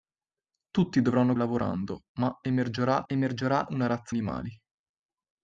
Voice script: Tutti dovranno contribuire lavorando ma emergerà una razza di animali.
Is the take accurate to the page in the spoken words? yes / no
no